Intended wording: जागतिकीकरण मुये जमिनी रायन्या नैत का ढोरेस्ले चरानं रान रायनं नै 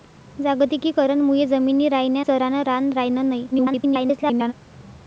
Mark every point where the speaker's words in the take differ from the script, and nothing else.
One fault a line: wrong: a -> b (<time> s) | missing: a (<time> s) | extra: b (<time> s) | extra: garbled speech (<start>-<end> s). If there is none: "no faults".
missing: नैत का ढोरेस्ले (2.2 s)
extra: garbled speech (3.5-4.5 s)